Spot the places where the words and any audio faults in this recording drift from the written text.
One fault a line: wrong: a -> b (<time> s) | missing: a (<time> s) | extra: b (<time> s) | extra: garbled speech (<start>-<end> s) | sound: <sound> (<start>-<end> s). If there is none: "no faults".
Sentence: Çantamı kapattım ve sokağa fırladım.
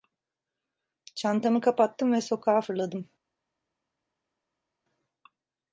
no faults